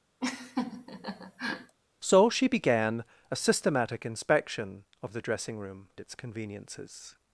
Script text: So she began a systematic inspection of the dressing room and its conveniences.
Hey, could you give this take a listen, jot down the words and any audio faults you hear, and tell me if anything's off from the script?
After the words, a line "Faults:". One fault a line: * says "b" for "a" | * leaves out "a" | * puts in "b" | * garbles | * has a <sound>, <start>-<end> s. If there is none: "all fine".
So she began a systematic inspection of the dressing room its conveniences.
Faults:
* has a laugh, 0.2-1.8 s
* leaves out "and"